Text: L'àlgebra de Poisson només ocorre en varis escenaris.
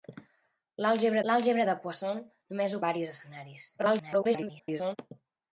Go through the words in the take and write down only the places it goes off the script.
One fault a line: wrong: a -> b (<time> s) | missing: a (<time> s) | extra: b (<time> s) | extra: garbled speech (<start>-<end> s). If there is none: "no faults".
extra: l'àlgebra (1.3 s)
missing: ocorre en (2.8 s)
extra: garbled speech (3.8-5.0 s)